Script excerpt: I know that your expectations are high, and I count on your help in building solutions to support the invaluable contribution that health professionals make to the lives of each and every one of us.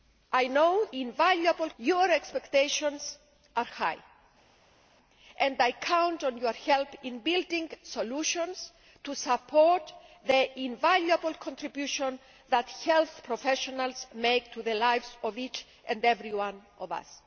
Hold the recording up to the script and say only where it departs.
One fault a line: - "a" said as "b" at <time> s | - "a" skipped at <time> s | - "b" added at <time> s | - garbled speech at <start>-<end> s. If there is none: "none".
- "that" said as "invaluable" at 0.9 s